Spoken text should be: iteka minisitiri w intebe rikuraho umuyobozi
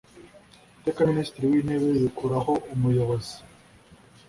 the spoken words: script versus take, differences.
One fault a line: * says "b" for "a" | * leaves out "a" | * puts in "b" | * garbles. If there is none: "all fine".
all fine